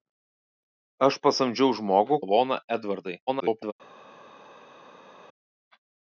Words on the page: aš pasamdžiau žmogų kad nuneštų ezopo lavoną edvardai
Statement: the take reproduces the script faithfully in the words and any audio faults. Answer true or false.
false